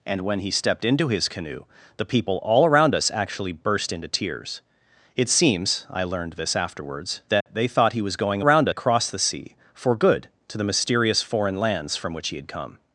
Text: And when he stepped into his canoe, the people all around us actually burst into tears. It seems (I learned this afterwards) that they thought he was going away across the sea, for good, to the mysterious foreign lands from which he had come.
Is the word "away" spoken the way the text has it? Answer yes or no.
no